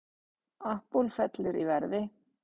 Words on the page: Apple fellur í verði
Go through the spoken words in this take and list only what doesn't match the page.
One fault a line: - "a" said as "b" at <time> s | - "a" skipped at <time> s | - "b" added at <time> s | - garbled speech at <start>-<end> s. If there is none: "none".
none